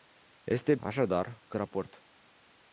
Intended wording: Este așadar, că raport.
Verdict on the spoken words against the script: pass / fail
pass